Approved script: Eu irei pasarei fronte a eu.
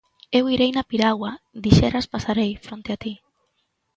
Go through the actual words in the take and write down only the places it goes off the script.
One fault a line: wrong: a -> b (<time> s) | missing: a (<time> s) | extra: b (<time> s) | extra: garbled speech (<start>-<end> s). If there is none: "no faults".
extra: na piragua dixeras (0.7 s)
wrong: eu -> ti (3.0 s)